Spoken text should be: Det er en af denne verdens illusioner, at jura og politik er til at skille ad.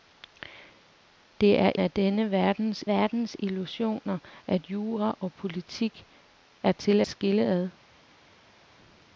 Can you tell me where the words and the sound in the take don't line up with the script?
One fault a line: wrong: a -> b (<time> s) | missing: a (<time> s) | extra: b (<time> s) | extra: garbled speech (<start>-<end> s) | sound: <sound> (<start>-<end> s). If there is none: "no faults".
missing: en (1.7 s)
extra: verdens (2.9 s)
missing: at (7.0 s)